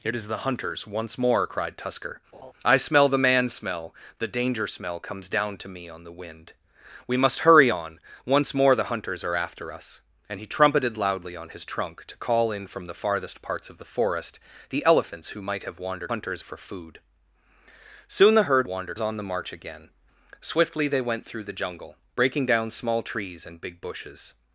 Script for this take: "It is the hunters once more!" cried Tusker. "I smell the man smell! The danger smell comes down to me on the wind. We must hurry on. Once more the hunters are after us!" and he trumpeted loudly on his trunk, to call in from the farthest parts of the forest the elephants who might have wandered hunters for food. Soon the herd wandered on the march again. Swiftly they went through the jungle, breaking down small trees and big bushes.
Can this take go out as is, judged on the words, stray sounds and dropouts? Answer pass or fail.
fail